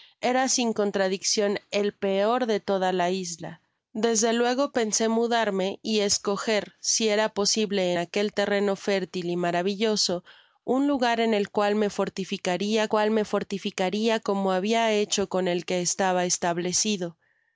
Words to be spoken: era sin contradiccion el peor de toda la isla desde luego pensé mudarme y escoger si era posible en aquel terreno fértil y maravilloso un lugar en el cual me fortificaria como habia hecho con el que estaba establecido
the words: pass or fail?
fail